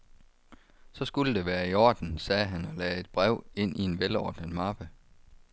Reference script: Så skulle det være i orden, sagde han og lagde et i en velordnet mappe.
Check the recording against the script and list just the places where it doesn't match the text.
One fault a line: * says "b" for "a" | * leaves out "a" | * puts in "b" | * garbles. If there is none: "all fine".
* puts in "brev ind"